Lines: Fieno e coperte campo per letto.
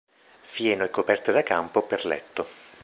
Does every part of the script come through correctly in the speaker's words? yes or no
no